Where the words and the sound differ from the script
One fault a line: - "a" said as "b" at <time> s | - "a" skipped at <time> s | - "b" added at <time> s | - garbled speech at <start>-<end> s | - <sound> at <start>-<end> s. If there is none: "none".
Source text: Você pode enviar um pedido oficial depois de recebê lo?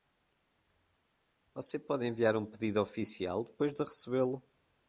none